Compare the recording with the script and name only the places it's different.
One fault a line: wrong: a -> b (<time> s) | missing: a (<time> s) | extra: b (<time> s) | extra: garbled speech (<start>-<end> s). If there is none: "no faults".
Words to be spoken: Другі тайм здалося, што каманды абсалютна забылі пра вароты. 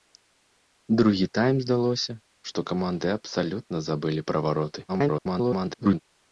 extra: garbled speech (4.9-6.0 s)